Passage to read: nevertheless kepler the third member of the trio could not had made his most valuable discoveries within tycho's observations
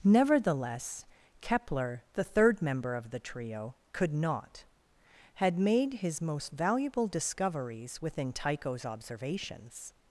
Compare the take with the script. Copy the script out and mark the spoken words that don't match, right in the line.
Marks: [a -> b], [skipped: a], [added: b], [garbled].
nevertheless kepler the third member of the trio could not had made his most valuable discoveries within tycho's observations